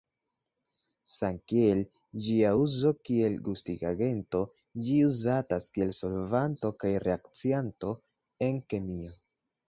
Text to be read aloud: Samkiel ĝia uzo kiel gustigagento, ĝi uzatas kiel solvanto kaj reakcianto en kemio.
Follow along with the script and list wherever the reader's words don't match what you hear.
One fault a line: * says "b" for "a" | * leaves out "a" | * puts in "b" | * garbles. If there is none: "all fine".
all fine